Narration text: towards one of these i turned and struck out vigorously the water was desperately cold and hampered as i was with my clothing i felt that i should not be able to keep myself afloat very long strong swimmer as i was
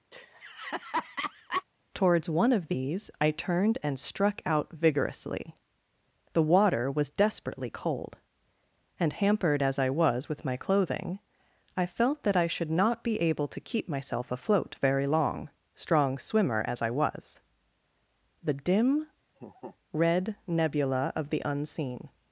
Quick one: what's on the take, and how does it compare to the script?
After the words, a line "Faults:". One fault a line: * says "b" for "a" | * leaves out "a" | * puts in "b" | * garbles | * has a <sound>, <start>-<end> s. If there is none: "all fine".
towards one of these i turned and struck out vigorously the water was desperately cold and hampered as i was with my clothing i felt that i should not be able to keep myself afloat very long strong swimmer as i was the dim red nebula of the unseen
Faults:
* has a laugh, 0.1-1.6 s
* puts in "the dim red nebula of the unseen"
* has a laugh, 19.4-19.8 s